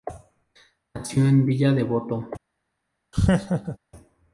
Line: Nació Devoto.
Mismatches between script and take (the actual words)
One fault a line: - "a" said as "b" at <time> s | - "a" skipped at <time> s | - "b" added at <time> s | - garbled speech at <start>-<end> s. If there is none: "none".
- "en Villa" added at 1.3 s